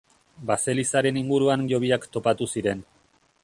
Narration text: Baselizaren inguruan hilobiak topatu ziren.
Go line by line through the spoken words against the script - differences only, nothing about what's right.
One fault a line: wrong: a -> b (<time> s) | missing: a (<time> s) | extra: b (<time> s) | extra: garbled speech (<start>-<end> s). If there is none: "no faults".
no faults